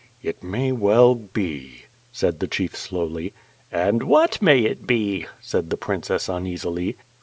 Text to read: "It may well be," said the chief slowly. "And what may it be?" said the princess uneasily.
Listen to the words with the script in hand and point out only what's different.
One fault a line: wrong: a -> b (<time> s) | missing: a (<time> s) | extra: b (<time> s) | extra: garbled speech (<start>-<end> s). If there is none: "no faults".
no faults